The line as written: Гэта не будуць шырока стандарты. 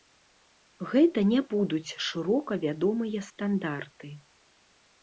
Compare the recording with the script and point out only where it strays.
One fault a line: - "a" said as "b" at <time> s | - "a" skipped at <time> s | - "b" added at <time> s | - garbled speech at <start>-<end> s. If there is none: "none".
- "вядомыя" added at 2.6 s